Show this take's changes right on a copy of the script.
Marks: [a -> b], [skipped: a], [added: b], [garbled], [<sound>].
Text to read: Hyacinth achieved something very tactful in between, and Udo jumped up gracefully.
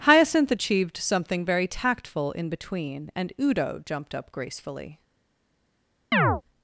Hyacinth achieved something very tactful in between, and Udo jumped up gracefully. [chirp]